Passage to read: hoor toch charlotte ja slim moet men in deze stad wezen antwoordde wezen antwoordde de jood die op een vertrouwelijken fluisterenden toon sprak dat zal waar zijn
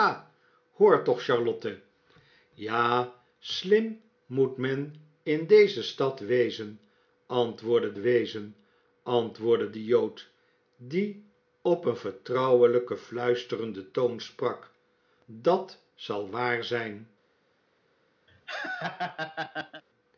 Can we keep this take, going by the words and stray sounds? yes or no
no